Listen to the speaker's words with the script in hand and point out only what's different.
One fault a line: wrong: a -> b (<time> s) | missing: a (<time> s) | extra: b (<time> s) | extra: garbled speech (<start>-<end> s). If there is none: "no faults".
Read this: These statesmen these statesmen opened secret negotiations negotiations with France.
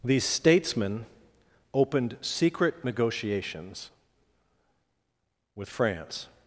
missing: these statesmen (1.1 s)
missing: negotiations (3.9 s)